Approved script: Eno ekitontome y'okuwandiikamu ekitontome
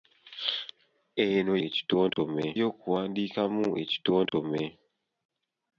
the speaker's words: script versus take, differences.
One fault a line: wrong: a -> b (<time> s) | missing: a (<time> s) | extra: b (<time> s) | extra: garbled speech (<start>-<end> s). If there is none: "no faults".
no faults